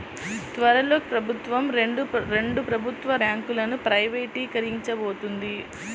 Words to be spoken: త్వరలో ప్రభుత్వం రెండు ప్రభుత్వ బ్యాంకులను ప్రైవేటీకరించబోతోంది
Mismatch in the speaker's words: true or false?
false